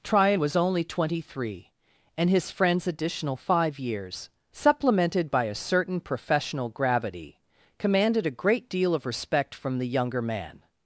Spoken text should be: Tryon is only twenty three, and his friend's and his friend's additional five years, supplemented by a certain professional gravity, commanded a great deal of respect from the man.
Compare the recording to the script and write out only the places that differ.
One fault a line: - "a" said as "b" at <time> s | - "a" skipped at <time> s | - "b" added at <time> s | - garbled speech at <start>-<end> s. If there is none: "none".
- "is" said as "was" at 0.4 s
- "and his friend's" skipped at 2.9 s
- "younger" added at 9.9 s